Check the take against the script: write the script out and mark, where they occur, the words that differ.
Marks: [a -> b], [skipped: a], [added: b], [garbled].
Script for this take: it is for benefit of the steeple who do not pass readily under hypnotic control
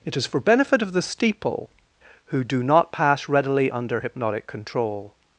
it is for benefit of the steeple who do not pass readily under hypnotic control